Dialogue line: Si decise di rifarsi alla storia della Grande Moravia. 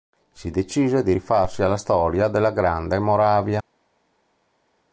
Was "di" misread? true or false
false